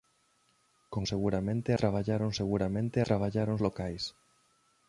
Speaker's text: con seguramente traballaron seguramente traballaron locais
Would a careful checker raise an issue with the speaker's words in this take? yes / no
no